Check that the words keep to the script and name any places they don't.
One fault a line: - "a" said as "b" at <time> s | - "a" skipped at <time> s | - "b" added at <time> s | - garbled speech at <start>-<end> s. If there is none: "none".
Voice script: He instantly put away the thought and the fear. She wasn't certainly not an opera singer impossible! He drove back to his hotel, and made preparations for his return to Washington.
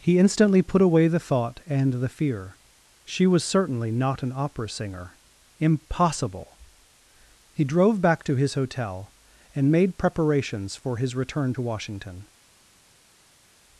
- "wasn't" said as "was" at 3.3 s